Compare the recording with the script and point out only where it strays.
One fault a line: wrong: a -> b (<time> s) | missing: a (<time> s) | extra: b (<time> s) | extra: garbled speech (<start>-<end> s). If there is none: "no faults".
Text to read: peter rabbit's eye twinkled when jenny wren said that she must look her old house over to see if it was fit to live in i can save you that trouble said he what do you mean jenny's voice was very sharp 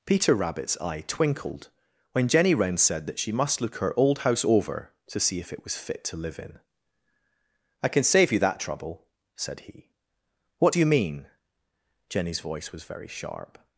no faults